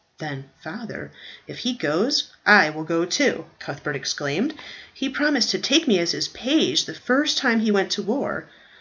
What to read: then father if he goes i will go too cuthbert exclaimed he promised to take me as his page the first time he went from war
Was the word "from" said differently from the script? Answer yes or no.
yes